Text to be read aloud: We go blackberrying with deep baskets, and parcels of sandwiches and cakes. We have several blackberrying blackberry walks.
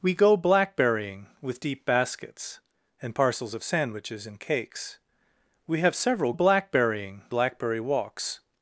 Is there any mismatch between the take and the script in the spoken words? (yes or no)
no